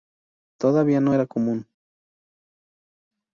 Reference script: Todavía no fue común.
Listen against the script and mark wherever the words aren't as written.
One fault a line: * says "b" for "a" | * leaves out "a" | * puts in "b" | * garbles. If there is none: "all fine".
* says "era" for "fue"